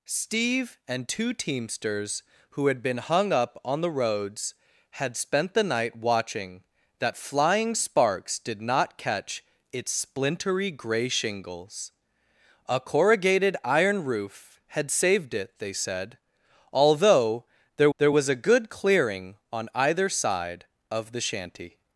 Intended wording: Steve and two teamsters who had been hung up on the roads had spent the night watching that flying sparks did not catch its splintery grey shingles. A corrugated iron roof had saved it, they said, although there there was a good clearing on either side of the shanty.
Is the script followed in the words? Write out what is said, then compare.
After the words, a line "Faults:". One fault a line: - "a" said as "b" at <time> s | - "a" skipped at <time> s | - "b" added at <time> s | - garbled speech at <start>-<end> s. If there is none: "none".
Steve and two teamsters who had been hung up on the roads had spent the night watching that flying sparks did not catch its splintery grey shingles. A corrugated iron roof had saved it, they said, although there there was a good clearing on either side of the shanty.
Faults:
none